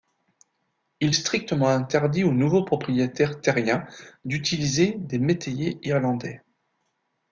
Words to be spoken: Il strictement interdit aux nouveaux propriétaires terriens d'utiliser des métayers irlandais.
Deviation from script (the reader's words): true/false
false